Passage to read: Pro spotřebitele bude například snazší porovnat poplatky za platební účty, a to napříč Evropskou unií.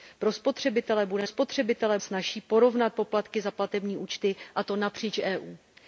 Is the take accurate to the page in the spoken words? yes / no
no